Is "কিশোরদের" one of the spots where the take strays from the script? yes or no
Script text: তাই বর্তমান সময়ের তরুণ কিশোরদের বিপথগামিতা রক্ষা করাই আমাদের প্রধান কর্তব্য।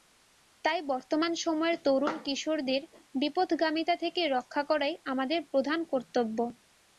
no